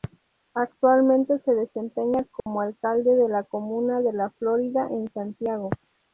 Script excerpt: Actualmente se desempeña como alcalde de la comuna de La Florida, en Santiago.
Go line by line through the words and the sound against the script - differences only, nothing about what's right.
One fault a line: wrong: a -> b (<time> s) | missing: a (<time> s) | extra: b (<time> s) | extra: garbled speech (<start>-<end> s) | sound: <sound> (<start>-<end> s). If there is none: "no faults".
sound: dropout (2.4-2.5 s)